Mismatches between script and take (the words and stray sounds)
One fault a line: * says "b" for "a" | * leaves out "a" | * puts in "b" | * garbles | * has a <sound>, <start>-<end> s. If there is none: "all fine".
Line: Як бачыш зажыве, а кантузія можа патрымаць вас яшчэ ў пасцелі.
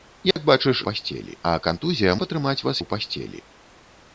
* has a dropout, 0.3-0.4 s
* says "пасцелі" for "зажыве"
* leaves out "можа"
* leaves out "яшчэ"